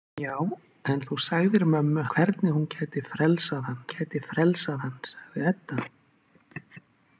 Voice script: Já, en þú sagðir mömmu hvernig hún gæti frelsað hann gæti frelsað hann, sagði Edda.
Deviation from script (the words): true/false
false